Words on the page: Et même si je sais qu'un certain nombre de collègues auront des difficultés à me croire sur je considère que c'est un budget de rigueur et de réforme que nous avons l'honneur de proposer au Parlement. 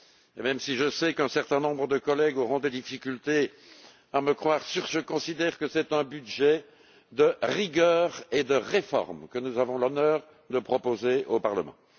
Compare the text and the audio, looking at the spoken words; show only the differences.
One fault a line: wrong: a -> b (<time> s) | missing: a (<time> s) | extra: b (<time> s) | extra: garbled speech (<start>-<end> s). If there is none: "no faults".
no faults